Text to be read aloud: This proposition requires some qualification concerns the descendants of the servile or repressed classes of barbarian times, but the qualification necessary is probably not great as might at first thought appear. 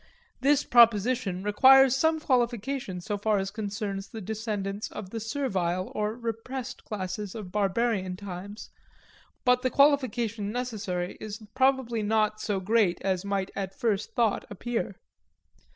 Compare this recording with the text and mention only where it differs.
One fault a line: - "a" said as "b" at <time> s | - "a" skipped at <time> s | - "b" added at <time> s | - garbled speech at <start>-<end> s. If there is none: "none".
- "so far as" added at 3.0 s
- "so" added at 12.4 s